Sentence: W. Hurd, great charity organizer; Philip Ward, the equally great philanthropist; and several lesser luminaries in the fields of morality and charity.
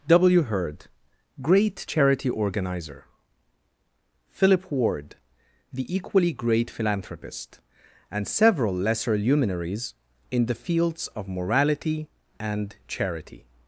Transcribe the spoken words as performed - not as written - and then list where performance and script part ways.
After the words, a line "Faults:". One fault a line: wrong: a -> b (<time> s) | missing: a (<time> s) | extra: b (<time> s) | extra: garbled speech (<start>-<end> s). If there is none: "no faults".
W. Hurd, great charity organizer; Philip Ward, the equally great philanthropist; and several lesser luminaries in the fields of morality and charity.
Faults:
no faults